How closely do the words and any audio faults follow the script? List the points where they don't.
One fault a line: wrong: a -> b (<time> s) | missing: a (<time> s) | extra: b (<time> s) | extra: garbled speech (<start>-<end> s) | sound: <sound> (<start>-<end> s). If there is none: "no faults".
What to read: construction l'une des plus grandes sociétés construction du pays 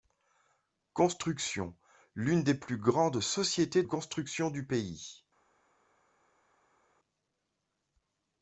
no faults